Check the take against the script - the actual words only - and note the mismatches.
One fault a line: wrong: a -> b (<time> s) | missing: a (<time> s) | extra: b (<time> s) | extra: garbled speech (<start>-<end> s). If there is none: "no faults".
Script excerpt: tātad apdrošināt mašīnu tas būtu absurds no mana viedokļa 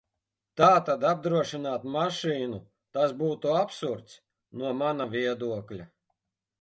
no faults